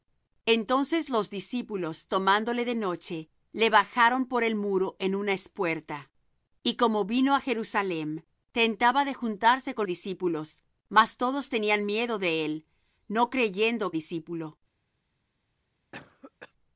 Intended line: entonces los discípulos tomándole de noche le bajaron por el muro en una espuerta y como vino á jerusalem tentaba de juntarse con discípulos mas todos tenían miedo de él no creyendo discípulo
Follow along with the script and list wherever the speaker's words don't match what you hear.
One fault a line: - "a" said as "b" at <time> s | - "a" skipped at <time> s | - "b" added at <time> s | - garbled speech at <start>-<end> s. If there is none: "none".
none